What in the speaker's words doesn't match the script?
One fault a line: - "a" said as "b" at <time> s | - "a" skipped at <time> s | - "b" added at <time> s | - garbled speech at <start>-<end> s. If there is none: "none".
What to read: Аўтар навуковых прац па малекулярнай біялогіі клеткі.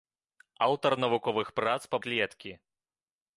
- "малекулярнай біялогіі" skipped at 2.0 s